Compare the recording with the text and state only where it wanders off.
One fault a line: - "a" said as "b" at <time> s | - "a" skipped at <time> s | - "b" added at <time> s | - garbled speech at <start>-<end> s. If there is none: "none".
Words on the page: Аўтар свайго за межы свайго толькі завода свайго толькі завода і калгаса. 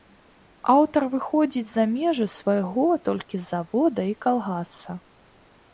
- "свайго" said as "выходзіць" at 1.1 s
- "свайго толькі завода" skipped at 4.0 s